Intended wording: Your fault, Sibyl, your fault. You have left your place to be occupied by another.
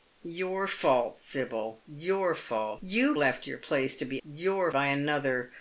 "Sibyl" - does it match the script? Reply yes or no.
yes